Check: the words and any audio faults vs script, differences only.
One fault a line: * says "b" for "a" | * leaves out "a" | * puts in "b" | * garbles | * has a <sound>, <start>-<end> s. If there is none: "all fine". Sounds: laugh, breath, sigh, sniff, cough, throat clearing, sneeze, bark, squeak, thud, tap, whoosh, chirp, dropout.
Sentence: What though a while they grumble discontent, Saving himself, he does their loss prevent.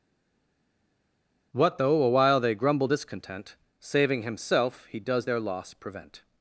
all fine